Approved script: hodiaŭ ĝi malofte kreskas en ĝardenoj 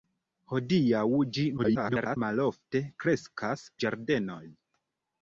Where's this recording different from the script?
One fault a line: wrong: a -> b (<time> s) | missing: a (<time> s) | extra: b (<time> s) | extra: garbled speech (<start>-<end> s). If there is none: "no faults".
extra: garbled speech (1.6-2.2 s)
missing: en (3.7 s)